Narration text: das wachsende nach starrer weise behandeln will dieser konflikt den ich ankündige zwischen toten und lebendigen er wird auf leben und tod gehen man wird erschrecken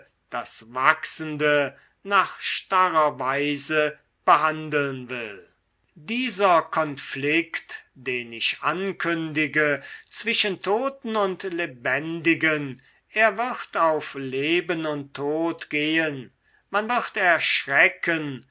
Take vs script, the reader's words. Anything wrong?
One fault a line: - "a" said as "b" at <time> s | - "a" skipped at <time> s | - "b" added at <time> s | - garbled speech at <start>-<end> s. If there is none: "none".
none